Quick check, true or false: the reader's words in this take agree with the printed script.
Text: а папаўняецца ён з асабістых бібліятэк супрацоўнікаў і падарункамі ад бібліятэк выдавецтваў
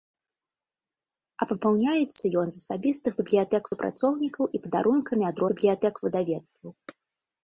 true